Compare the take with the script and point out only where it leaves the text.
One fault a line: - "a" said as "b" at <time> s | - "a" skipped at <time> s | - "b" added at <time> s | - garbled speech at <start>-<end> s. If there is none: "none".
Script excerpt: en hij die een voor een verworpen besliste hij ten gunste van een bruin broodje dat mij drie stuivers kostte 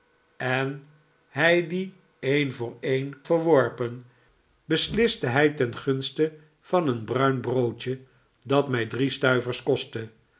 none